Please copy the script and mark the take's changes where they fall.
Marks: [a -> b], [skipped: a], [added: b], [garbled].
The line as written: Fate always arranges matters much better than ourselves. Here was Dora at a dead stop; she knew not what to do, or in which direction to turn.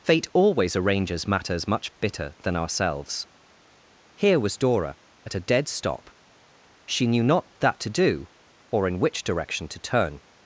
Fate always arranges matters much [better -> bitter] than ourselves. Here was Dora at a dead stop; she knew not [what -> that] to do, or in which direction to turn.